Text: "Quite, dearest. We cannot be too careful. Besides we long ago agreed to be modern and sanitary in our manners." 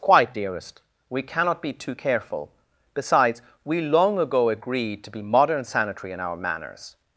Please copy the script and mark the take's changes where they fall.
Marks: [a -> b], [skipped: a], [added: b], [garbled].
"Quite, dearest. We cannot be too careful. Besides we long ago agreed to be modern [skipped: and] sanitary in our manners."